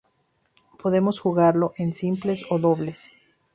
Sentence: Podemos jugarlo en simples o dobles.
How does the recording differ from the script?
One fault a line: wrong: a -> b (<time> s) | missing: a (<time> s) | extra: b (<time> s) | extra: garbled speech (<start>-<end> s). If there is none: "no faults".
no faults